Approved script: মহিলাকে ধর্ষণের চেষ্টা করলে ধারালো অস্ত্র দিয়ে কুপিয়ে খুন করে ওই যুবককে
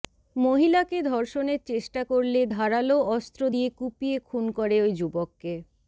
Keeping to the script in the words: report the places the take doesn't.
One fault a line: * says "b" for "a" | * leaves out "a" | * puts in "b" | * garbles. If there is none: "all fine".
all fine